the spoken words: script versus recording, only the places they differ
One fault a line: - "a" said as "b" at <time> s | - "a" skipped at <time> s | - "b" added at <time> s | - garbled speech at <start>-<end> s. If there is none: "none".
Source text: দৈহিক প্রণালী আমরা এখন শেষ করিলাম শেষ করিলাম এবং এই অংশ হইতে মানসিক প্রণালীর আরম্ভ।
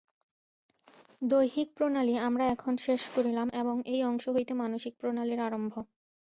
- "শেষ করিলাম" skipped at 3.5 s